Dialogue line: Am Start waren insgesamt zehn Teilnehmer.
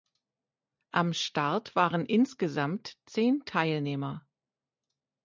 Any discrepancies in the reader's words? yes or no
no